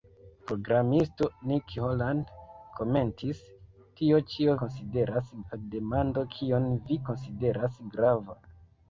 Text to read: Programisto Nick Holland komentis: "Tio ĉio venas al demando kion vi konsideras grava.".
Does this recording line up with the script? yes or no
no